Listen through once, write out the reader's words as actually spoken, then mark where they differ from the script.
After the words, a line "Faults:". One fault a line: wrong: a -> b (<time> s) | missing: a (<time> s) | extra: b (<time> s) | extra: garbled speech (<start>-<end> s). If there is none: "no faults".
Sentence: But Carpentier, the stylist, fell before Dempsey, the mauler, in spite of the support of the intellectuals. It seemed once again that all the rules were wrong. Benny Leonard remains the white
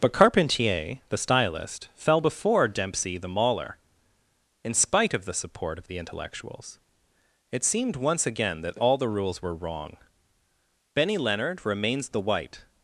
But Carpentier, the stylist, fell before Dempsey, the mauler, in spite of the support of the intellectuals. It seemed once again that all the rules were wrong. Benny Leonard remains the white
Faults:
no faults